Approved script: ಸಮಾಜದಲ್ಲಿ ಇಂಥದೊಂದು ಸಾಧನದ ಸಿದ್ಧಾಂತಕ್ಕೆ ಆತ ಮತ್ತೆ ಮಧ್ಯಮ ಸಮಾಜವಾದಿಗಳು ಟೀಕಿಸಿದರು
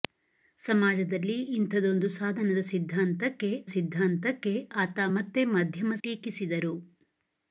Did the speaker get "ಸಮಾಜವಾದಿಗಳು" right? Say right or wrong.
wrong